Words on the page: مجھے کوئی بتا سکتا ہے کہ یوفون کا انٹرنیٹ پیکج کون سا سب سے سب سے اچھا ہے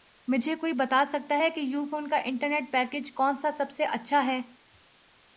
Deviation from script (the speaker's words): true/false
true